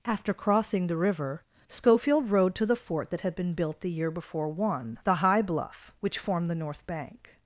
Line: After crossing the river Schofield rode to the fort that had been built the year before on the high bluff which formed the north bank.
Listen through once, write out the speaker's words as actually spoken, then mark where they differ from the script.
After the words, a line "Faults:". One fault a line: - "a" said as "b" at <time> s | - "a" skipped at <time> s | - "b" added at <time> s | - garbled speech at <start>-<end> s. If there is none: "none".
After crossing the river Schofield rode to the fort that had been built the year before one the high bluff which formed the north bank.
Faults:
- "on" said as "one" at 4.5 s